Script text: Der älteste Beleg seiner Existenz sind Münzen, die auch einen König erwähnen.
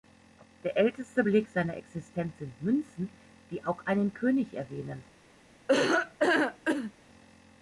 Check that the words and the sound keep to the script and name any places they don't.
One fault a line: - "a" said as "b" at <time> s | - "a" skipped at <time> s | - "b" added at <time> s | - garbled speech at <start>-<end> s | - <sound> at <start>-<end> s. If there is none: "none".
- laugh at 5.7-6.9 s